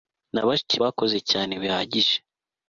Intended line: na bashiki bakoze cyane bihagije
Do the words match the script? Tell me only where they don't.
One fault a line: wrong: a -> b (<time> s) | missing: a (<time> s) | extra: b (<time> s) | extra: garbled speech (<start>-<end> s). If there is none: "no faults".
no faults